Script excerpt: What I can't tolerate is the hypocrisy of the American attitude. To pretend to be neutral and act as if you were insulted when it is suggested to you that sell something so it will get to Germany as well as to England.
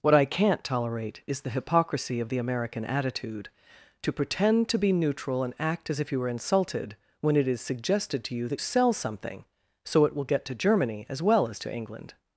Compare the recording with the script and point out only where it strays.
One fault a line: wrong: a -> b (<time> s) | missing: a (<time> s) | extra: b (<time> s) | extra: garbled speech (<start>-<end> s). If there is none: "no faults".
no faults